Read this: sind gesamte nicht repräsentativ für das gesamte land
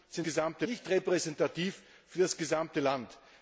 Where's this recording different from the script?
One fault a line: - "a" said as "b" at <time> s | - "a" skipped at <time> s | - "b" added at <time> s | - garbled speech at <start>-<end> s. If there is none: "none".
none